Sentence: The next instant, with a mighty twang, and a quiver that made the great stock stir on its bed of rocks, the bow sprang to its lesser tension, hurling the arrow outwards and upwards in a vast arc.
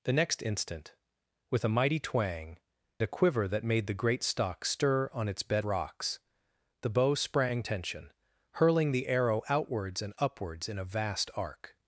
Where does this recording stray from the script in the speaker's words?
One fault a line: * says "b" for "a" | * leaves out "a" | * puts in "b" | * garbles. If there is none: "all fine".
* leaves out "and"
* leaves out "of"
* leaves out "to its lesser"